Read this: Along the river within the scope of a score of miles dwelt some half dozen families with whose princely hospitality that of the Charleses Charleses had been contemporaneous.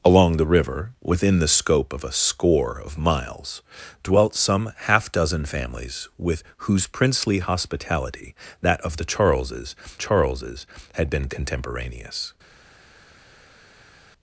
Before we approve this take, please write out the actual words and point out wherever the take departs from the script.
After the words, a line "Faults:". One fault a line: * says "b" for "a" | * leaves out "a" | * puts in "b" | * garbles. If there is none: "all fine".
Along the river within the scope of a score of miles dwelt some half dozen families with whose princely hospitality that of the Charleses Charleses had been contemporaneous.
Faults:
all fine